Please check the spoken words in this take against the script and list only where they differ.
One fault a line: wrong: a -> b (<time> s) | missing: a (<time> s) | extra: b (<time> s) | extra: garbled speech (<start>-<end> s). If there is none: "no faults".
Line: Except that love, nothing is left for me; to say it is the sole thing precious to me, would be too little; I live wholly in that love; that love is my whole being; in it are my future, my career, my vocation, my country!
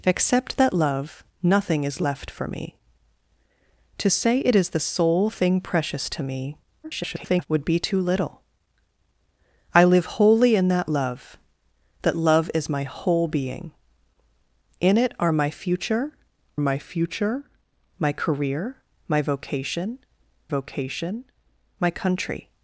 extra: garbled speech (6.8-7.5 s)
extra: future my (16.8 s)
extra: vocation (20.5 s)